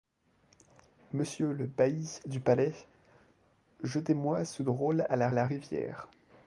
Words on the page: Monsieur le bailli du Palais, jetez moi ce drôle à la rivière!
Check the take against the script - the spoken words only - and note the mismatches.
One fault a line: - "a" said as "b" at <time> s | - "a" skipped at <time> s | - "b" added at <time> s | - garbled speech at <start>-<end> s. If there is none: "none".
- "la" added at 5.3 s